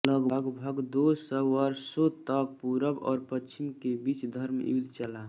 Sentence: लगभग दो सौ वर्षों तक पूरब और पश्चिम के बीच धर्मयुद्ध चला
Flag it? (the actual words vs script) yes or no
no